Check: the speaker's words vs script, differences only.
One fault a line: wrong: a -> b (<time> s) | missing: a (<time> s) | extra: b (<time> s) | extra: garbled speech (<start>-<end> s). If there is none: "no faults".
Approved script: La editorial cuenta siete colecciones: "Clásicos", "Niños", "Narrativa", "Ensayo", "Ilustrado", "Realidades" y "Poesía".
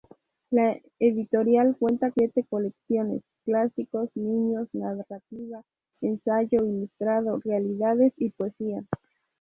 no faults